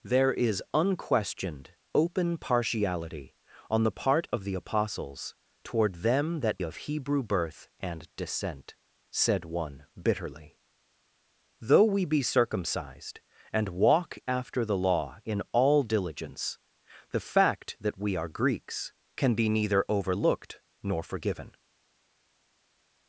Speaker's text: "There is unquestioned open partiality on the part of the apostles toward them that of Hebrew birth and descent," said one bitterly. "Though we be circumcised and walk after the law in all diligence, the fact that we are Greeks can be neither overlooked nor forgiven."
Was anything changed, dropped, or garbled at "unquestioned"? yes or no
no